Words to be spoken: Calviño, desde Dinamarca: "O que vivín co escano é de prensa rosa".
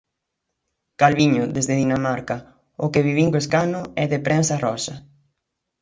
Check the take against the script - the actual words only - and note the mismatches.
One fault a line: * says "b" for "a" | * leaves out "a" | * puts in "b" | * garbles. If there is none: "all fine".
all fine